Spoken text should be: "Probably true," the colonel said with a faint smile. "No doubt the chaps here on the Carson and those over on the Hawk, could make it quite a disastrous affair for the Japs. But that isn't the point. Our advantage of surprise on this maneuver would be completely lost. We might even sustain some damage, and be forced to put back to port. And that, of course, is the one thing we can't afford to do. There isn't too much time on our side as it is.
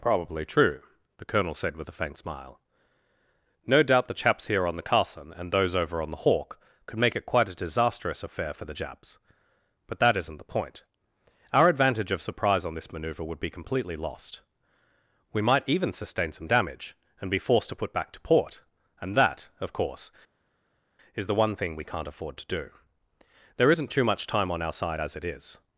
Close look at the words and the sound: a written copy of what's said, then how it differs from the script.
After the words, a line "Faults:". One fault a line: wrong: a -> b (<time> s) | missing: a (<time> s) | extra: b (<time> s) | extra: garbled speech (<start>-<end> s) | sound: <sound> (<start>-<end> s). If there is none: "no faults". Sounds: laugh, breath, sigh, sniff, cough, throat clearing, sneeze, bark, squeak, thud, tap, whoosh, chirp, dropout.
"Probably true," the colonel said with a faint smile. "No doubt the chaps here on the Carson and those over on the Hawk, could make it quite a disastrous affair for the Japs. But that isn't the point. Our advantage of surprise on this maneuver would be completely lost. We might even sustain some damage, and be forced to put back to port. And that, of course, is the one thing we can't afford to do. There isn't too much time on our side as it is.
Faults:
no faults